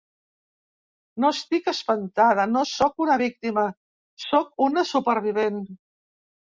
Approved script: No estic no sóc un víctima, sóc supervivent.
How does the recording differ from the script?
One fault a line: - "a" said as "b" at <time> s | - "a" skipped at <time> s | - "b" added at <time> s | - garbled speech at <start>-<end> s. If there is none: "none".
- "espantada" added at 1.7 s
- "un" said as "una" at 3.1 s
- "una" added at 4.7 s